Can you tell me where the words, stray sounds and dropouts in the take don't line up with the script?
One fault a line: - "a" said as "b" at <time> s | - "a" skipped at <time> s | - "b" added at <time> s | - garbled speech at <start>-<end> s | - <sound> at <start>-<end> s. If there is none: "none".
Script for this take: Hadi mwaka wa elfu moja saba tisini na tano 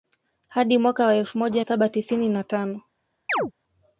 - chirp at 3.3-3.5 s